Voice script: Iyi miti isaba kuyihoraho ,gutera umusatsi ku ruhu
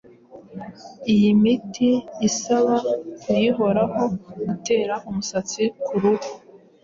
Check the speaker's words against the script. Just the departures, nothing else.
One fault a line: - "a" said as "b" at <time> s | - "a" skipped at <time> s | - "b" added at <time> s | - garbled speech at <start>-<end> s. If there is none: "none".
none